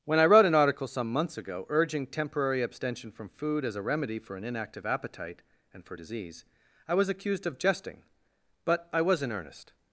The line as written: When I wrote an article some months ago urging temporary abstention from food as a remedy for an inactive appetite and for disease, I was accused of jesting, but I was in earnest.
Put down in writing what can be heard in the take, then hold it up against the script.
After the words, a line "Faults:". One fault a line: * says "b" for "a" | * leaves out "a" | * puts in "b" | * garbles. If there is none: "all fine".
When I wrote an article some months ago urging temporary abstention from food as a remedy for an inactive appetite and for disease, I was accused of jesting, but I was in earnest.
Faults:
all fine